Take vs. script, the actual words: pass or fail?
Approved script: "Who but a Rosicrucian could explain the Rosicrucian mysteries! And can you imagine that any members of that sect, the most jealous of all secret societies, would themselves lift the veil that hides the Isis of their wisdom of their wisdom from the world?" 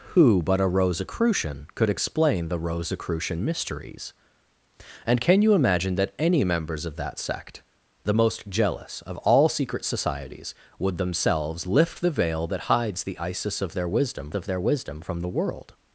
pass